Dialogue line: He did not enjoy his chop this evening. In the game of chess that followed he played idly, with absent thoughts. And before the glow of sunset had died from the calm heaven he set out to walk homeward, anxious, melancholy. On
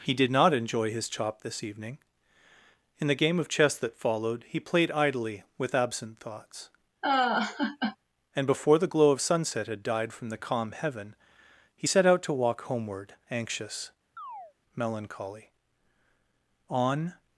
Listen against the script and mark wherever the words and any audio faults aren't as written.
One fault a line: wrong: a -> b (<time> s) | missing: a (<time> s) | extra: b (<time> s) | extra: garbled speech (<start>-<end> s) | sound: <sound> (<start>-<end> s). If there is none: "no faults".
sound: laugh (7.0-8.0 s)
sound: chirp (14.2-14.5 s)